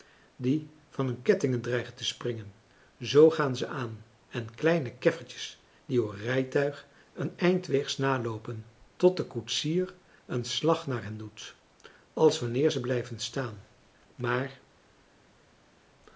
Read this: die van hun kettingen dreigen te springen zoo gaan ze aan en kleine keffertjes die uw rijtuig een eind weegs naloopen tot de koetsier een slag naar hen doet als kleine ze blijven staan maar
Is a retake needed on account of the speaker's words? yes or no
yes